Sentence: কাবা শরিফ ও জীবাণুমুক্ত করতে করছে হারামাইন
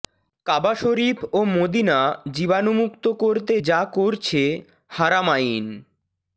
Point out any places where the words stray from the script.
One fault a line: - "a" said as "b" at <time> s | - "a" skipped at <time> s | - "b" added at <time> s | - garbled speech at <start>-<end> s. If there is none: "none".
- "মদিনা" added at 1.5 s
- "যা" added at 3.6 s